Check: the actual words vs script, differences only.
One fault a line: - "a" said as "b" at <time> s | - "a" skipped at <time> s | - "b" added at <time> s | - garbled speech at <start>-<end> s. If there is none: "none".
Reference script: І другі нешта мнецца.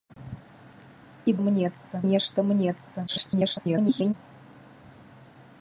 - "другі" said as "мнецца" at 1.5 s
- garbled speech at 3.1-4.1 s